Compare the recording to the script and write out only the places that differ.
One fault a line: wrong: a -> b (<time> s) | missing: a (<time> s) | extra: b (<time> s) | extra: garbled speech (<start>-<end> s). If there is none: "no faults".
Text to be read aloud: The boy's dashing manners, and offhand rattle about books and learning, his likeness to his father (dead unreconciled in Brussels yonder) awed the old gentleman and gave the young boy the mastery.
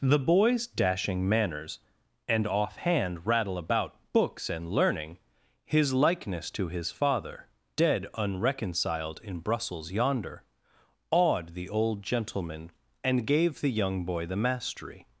no faults